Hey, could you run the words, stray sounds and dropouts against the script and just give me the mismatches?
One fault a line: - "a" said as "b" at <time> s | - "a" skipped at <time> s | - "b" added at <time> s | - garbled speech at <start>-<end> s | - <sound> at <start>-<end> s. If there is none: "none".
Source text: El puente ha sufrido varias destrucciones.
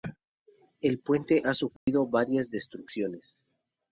- dropout at 1.8-1.9 s